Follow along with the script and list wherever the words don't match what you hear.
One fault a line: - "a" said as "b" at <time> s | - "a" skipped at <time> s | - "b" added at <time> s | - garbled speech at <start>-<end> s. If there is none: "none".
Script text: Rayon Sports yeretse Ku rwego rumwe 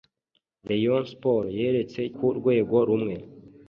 none